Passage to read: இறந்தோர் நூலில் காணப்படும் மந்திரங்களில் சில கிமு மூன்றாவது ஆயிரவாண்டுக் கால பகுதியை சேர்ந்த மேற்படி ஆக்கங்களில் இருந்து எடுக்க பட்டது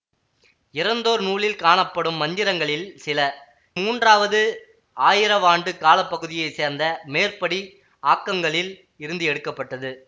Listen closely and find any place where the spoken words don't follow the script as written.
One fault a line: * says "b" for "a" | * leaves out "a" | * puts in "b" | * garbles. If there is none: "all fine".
* leaves out "கிமு"